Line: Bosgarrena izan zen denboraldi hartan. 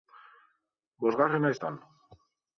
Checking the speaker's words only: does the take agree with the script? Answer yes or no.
no